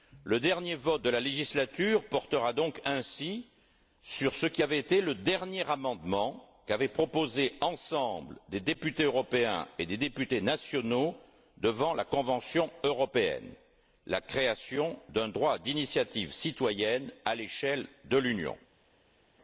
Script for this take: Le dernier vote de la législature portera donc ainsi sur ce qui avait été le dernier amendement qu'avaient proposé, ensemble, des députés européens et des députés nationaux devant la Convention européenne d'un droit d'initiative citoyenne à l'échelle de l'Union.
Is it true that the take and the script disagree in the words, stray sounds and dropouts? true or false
true